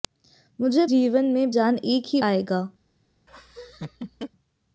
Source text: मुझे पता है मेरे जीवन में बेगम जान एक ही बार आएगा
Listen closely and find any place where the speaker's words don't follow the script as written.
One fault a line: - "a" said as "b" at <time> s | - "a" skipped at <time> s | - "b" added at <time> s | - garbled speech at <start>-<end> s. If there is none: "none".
- "पता है मेरे" skipped at 0.8 s
- "बेगम" skipped at 1.5 s
- "बार" skipped at 2.2 s